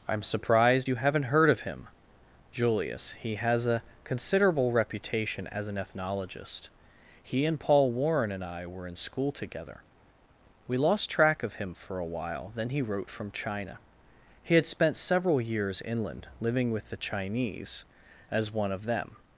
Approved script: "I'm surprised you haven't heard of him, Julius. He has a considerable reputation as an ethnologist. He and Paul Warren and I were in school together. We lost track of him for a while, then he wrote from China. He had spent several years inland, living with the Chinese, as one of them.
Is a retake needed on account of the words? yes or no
no